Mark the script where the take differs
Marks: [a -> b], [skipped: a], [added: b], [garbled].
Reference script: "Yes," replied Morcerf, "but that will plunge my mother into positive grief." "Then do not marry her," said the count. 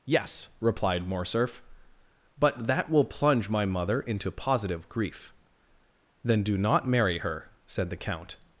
"Yes," replied Morcerf, "but that will plunge my mother into positive grief." "Then do not marry her," said the count.